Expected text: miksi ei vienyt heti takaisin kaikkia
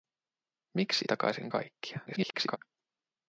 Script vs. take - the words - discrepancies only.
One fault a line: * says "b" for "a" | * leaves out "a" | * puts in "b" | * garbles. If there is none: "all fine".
* leaves out "ei vienyt heti"
* garbles